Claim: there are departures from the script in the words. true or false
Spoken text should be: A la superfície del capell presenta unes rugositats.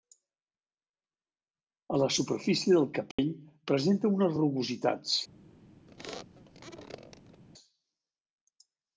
false